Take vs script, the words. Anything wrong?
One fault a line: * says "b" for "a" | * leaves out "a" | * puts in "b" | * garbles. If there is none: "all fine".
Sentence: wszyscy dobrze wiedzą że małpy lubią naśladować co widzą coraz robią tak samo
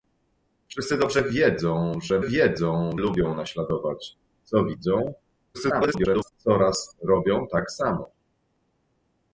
* says "wiedzą" for "małpy"
* garbles